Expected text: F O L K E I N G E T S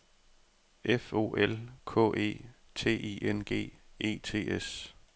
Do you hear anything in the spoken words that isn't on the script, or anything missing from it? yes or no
yes